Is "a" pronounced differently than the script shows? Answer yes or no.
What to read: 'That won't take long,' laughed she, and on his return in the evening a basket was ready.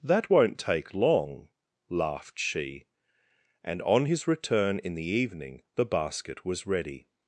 yes